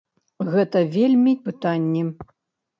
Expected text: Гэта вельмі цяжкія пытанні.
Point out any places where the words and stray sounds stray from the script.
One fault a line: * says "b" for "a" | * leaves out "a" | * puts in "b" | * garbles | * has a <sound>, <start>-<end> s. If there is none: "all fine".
* leaves out "цяжкія"